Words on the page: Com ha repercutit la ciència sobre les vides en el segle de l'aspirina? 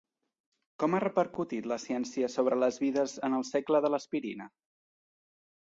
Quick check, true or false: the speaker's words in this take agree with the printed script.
true